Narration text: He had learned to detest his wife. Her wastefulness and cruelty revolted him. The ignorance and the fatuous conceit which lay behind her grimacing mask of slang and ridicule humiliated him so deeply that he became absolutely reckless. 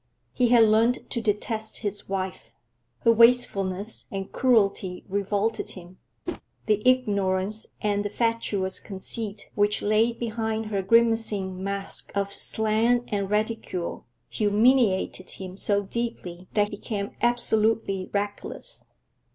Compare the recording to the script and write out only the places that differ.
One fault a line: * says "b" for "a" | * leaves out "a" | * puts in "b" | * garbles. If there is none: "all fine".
* leaves out "he"